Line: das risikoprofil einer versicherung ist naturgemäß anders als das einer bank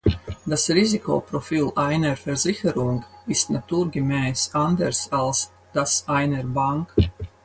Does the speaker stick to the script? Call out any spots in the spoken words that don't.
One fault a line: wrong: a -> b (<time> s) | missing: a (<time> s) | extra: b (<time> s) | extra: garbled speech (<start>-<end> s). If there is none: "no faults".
no faults